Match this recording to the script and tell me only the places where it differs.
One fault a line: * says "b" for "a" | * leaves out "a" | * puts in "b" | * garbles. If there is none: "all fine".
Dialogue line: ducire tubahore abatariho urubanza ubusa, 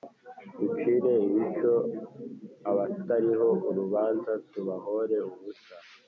* says "ibico" for "tubahore"
* puts in "tubahore"